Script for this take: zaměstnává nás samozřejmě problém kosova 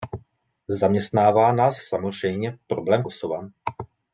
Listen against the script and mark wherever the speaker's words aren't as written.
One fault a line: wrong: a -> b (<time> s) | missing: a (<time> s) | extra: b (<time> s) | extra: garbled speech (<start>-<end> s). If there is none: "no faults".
no faults